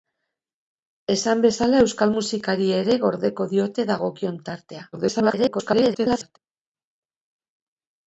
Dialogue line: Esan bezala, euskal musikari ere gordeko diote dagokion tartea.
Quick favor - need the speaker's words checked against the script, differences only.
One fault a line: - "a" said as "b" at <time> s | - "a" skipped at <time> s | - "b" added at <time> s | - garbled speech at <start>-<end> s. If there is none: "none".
- garbled speech at 4.9-6.4 s